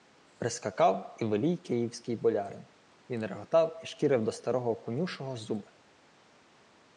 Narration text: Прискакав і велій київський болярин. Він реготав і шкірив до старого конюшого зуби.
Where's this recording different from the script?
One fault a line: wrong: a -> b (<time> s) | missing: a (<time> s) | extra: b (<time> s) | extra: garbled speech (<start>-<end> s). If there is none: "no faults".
no faults